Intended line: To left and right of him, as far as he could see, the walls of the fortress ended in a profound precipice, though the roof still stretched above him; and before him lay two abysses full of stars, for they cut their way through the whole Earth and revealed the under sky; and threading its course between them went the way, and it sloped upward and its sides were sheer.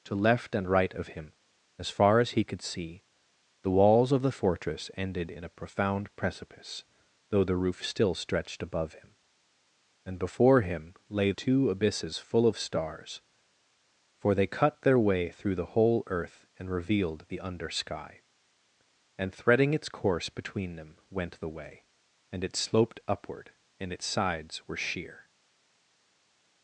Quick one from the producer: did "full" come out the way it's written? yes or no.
yes